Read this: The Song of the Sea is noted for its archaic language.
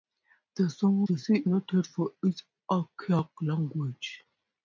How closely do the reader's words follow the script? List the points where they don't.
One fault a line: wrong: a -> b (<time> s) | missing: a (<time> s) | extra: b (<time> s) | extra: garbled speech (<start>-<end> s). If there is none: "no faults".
missing: of (1.0 s)
missing: is (1.5 s)